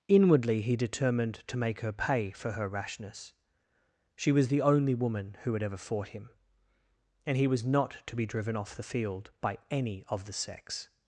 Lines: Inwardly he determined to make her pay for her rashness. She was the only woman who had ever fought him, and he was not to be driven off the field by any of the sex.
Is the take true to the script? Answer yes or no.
yes